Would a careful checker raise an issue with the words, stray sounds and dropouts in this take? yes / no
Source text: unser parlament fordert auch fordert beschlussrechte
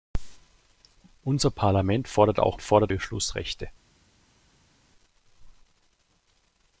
no